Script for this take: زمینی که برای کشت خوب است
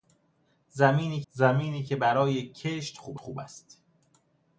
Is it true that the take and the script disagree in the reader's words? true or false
true